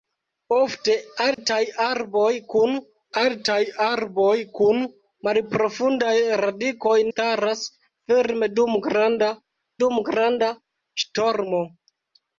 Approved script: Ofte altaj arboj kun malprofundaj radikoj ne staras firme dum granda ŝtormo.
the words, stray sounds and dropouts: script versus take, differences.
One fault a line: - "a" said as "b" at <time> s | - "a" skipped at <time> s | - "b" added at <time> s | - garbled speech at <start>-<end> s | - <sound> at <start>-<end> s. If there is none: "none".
- dropout at 1.3-1.4 s
- "altaj arboj kun" added at 3.2 s
- "ne" skipped at 7.0 s
- "dum granda" added at 9.8 s